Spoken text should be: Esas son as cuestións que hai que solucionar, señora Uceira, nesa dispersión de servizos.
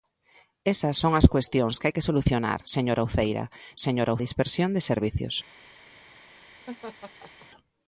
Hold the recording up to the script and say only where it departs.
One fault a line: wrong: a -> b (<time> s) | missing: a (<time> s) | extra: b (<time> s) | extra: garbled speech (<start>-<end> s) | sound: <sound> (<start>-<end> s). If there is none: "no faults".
wrong: nesa -> señora (3.9 s)
sound: laugh (6.7-7.5 s)